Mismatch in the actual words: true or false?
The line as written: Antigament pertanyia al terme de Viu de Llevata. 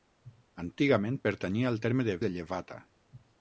true